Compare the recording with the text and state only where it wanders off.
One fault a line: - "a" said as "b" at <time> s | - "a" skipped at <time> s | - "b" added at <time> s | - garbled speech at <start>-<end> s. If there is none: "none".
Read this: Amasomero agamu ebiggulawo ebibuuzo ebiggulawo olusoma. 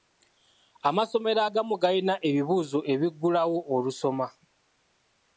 - "ebiggulawo" said as "galina" at 1.8 s